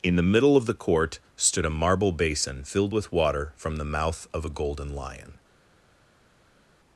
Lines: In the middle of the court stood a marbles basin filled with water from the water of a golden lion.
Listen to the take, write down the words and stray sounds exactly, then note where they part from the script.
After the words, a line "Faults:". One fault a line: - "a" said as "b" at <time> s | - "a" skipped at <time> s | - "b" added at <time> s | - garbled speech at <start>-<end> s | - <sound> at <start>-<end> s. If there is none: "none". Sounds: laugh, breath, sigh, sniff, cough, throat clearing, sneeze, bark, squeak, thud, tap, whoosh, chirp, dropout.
In the middle of the court stood a marble basin filled with water from the mouth of a golden lion.
Faults:
- "marbles" said as "marble" at 1.7 s
- "water" said as "mouth" at 3.8 s